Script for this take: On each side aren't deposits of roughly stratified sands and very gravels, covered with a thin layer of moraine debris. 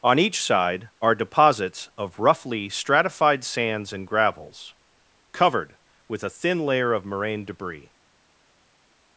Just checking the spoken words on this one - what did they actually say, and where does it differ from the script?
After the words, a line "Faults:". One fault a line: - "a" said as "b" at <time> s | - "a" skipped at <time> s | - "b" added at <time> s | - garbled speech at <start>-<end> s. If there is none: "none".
On each side are deposits of roughly stratified sands and gravels, covered with a thin layer of moraine debris.
Faults:
- "aren't" said as "are" at 1.0 s
- "very" skipped at 4.1 s